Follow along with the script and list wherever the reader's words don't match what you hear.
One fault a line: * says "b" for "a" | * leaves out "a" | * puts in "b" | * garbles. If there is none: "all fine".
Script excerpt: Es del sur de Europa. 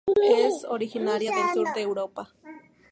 * puts in "originaria"